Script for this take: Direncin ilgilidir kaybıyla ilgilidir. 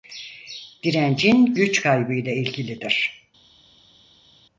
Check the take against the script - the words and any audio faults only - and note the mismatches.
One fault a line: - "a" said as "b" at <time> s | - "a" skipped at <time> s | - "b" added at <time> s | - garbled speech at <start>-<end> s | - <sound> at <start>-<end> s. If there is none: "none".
- "ilgilidir" said as "güç" at 1.4 s